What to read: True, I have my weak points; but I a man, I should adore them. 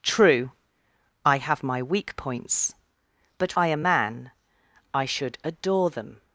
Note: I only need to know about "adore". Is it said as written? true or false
true